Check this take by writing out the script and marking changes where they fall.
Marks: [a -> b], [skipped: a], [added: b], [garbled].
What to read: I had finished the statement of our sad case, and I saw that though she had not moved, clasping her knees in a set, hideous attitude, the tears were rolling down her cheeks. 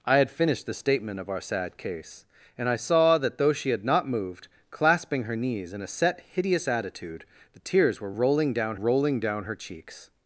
I had finished the statement of our sad case, and I saw that though she had not moved, clasping her knees in a set, hideous attitude, the tears were rolling down [added: rolling down] her cheeks.